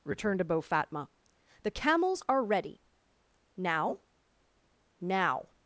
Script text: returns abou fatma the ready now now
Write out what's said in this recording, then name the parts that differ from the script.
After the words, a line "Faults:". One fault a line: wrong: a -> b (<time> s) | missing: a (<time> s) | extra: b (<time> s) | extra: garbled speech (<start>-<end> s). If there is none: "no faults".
returned abou fatma the camels are ready now now
Faults:
wrong: returns -> returned (0.0 s)
extra: camels are (1.7 s)